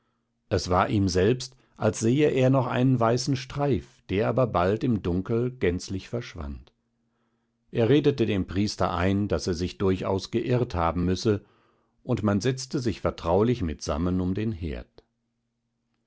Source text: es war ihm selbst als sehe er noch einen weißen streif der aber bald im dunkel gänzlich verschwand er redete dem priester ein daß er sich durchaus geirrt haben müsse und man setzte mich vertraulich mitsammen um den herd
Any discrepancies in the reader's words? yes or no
yes